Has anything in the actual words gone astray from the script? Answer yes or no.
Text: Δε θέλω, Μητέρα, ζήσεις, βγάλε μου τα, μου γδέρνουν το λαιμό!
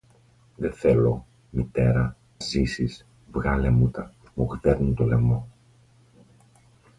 no